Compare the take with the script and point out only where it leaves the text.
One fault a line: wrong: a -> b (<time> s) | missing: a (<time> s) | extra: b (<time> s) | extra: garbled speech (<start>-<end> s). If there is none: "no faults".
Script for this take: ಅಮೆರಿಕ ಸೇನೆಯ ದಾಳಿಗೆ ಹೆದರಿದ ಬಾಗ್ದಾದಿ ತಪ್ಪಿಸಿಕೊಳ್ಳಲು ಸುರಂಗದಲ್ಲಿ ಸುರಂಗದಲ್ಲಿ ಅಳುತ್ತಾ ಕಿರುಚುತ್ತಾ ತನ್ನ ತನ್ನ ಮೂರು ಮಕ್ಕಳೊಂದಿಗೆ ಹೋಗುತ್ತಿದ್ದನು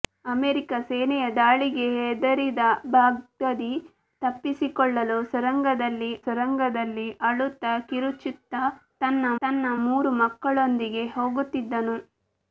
no faults